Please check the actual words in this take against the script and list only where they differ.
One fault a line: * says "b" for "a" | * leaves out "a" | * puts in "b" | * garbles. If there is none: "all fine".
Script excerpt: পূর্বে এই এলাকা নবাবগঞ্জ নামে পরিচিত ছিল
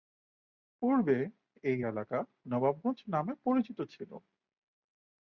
all fine